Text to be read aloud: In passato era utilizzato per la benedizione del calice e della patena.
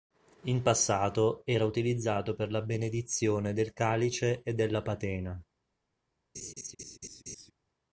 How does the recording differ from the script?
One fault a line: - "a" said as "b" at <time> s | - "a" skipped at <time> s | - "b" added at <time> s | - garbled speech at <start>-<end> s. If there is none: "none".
none